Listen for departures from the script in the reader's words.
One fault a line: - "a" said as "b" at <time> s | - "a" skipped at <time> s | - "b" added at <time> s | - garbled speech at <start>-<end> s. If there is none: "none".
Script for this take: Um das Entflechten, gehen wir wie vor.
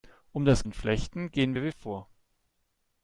none